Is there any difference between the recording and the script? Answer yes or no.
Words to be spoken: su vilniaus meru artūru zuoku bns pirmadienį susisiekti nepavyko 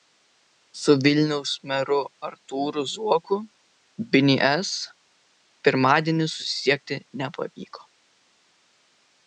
no